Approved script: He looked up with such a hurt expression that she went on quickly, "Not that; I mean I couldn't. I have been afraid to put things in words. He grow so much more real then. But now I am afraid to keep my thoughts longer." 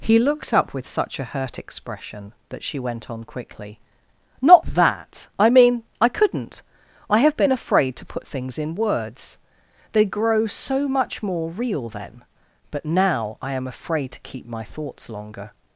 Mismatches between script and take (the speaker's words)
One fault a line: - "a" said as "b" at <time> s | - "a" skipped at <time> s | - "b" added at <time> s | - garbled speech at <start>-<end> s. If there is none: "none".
- "He" said as "They" at 9.9 s